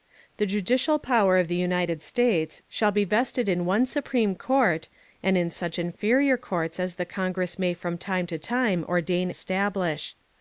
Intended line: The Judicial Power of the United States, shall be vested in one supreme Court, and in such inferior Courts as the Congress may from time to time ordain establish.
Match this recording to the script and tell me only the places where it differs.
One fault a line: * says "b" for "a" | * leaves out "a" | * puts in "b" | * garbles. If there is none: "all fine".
all fine